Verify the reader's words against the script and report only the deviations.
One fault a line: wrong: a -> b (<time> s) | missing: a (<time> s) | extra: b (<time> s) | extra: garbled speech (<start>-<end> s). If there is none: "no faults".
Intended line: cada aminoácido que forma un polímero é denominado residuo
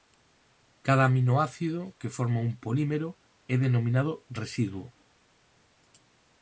no faults